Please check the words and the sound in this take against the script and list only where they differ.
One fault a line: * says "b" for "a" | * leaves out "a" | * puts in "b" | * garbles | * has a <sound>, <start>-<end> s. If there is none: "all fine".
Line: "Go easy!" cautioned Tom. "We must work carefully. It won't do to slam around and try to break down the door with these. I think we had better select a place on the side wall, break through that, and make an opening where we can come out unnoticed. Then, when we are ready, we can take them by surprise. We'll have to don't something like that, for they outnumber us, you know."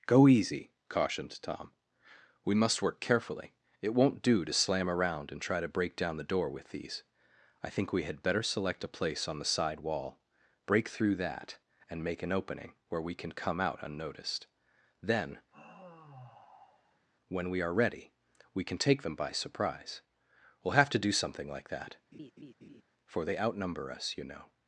* has a sigh, 15.5-17.1 s
* says "do" for "don't"
* has a laugh, 22.1-22.8 s